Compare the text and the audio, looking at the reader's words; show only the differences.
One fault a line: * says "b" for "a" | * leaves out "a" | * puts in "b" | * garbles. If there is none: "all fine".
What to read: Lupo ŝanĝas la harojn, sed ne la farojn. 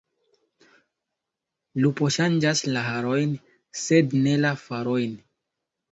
all fine